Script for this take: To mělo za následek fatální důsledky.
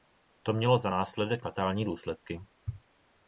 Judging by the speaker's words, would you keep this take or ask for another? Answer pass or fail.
pass